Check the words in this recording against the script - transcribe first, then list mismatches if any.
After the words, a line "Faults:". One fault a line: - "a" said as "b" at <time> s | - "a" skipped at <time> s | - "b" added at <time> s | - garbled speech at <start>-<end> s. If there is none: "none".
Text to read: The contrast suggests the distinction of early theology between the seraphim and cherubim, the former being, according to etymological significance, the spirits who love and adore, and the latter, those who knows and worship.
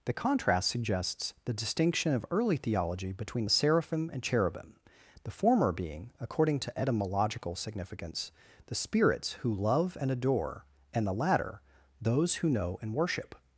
The contrast suggests the distinction of early theology between the seraphim and cherubim, the former being, according to etymological significance, the spirits who love and adore, and the latter, those who know and worship.
Faults:
- "knows" said as "know" at 12.5 s